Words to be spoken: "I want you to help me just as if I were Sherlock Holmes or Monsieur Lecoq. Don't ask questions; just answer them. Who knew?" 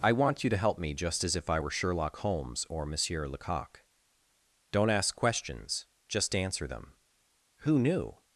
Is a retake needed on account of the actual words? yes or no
no